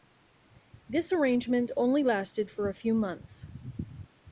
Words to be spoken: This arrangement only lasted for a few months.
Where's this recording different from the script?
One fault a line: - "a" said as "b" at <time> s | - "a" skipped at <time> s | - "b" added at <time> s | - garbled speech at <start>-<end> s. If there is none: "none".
none